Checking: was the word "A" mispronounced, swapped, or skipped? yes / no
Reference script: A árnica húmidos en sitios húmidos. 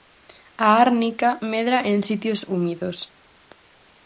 no